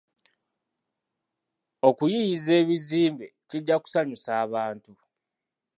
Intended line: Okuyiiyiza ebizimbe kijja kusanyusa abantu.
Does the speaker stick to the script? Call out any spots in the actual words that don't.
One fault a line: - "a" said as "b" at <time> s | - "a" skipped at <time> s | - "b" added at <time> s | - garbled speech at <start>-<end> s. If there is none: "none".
none